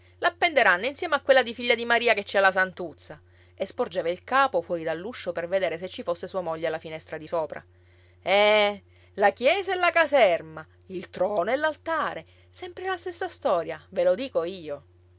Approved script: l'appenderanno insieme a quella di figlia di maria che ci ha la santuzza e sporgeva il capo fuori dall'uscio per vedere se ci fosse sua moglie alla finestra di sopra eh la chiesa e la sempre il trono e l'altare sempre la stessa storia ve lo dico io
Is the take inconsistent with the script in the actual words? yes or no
yes